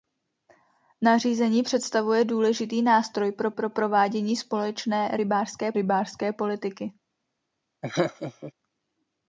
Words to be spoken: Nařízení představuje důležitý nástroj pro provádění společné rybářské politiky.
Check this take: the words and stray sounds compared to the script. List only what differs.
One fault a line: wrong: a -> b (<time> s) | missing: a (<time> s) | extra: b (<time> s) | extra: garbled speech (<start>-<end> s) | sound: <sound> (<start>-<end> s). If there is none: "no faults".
extra: pro (3.5 s)
extra: rybářské (5.7 s)
sound: laugh (7.8-8.5 s)